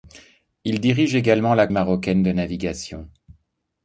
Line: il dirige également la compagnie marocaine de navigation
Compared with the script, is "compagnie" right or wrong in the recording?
wrong